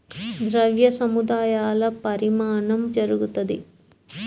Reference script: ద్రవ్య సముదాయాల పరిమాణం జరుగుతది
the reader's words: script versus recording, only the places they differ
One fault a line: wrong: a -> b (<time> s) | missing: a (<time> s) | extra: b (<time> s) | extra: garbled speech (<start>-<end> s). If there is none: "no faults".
no faults